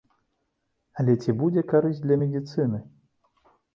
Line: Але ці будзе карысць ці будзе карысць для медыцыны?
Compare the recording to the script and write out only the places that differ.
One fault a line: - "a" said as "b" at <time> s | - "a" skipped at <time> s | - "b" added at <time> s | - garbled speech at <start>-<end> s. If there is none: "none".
- "ці будзе карысць" skipped at 2.0 s